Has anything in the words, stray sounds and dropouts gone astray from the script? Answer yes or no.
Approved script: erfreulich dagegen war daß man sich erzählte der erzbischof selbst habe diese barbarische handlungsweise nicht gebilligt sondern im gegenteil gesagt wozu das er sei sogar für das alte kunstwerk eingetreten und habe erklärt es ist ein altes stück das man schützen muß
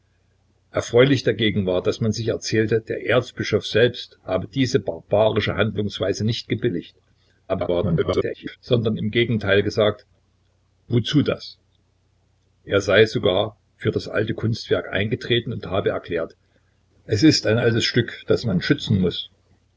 yes